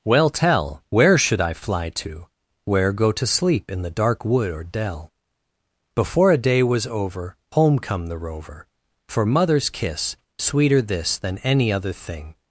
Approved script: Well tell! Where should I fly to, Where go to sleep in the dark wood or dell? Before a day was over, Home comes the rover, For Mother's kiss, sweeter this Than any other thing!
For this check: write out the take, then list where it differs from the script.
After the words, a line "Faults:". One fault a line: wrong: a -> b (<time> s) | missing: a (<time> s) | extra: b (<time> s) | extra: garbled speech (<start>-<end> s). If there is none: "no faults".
Well tell! Where should I fly to, Where go to sleep in the dark wood or dell? Before a day was over, Home come the rover, For Mother's kiss, sweeter this Than any other thing!
Faults:
wrong: comes -> come (7.8 s)